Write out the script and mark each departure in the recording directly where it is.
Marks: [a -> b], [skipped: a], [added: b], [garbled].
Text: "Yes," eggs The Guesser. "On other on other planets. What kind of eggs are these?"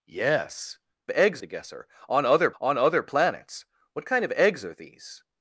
"Yes," eggs The Guesser. "On other on other planets. What kind of eggs are these?"